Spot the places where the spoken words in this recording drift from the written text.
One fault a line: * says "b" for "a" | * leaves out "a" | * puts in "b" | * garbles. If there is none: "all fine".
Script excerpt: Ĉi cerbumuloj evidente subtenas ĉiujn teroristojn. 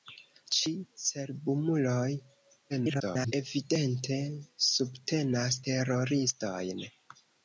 * garbles
* leaves out "ĉiujn"